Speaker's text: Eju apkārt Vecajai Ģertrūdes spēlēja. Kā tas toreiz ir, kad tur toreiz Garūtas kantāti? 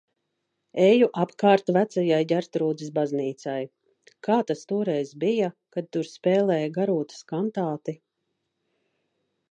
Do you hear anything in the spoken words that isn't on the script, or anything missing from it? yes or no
yes